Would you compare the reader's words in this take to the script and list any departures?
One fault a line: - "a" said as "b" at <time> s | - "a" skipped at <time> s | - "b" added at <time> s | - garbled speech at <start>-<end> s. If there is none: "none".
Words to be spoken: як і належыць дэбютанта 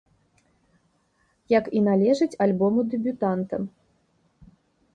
- "альбому" added at 2.5 s